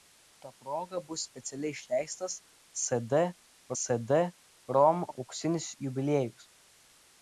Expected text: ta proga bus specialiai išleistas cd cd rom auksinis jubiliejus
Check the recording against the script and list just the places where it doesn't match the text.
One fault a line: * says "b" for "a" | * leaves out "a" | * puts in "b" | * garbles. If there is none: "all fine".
all fine